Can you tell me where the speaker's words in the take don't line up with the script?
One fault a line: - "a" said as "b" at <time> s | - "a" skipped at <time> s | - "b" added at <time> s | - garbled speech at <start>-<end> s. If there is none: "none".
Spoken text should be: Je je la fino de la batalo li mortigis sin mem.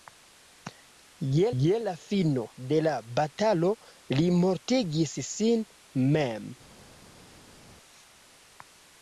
none